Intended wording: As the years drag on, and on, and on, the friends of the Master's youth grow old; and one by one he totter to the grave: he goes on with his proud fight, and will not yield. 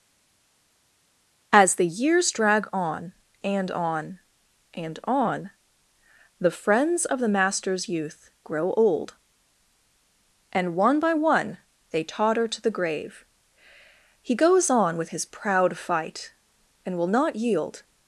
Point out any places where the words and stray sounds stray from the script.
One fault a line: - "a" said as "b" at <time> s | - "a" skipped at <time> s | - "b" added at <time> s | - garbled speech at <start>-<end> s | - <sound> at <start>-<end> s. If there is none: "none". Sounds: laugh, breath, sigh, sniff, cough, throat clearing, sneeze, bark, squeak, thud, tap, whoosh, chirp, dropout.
- "he" said as "they" at 11.9 s